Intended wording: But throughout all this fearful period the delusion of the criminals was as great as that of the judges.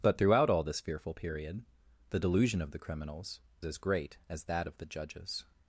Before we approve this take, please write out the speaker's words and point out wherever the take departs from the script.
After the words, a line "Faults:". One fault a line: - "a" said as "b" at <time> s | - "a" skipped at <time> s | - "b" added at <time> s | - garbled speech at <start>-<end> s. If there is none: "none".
But throughout all this fearful period the delusion of the criminals as great as that of the judges.
Faults:
- "was" skipped at 3.4 s